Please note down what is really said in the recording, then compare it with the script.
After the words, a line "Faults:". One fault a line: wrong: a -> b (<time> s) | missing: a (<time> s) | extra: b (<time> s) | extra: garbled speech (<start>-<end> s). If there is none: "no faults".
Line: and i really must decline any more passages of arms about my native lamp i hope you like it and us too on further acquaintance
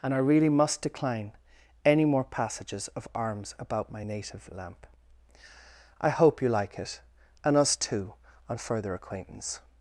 and i really must decline any more passages of arms about my native lamp i hope you like it and us too on further acquaintance
Faults:
no faults